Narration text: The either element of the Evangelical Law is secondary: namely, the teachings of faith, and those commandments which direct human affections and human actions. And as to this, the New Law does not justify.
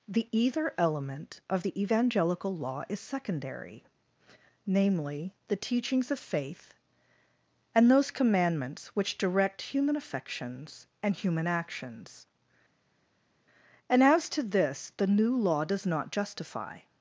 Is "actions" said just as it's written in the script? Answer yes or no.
yes